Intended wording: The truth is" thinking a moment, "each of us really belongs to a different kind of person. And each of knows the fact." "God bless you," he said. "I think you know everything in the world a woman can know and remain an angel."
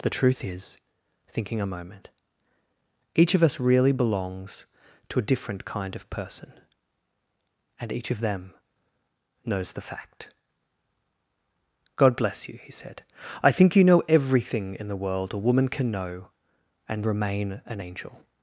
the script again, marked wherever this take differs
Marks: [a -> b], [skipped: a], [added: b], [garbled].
The truth is" thinking a moment, "each of us really belongs to a different kind of person. And each of [added: them] knows the fact." "God bless you," he said. "I think you know everything in the world a woman can know and remain an angel."